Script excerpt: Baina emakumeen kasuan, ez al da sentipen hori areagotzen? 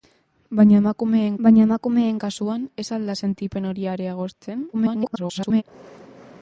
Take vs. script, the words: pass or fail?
fail